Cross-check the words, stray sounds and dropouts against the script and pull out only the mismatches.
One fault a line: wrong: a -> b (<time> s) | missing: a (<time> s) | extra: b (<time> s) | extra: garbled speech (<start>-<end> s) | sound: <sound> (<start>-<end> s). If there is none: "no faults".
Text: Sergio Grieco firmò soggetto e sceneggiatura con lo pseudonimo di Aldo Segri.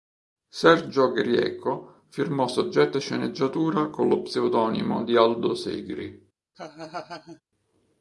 sound: laugh (6.5-7.4 s)